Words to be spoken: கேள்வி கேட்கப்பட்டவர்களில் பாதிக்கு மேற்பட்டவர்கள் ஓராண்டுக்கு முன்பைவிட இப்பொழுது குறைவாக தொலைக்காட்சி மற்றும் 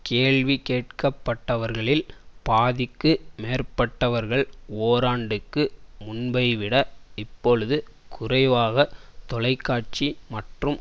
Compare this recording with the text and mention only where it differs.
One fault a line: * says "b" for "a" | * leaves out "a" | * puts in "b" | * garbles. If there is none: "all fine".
all fine